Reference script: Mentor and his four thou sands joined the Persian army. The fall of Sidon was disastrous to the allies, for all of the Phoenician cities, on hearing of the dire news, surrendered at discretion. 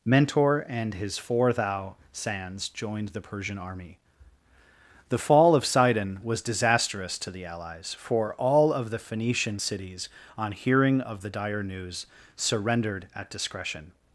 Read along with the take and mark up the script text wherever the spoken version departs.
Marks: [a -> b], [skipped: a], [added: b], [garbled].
Mentor and his four thou sands joined the Persian army. The fall of Sidon was disastrous to the allies, for all of the Phoenician cities, on hearing of the dire news, surrendered at discretion.